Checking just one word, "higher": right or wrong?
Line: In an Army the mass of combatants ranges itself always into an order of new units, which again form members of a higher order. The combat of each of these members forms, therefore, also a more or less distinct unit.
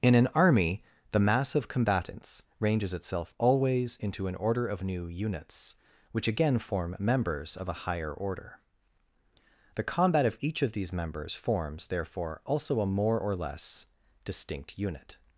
right